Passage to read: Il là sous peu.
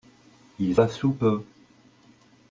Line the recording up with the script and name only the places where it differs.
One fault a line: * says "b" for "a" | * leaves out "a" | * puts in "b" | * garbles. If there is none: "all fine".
all fine